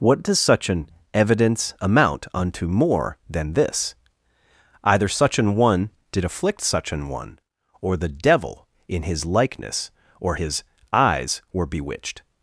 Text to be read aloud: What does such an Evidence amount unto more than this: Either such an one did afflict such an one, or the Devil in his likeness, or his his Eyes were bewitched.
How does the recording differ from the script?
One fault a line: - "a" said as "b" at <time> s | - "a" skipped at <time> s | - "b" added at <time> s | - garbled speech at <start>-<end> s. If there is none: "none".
- "his" skipped at 10.6 s